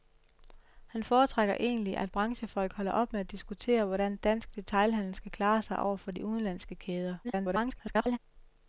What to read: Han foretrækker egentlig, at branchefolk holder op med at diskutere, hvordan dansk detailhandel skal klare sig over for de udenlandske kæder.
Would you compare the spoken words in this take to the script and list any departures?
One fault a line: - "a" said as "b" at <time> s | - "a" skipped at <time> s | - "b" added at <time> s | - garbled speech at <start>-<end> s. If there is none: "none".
- garbled speech at 7.2-8.2 s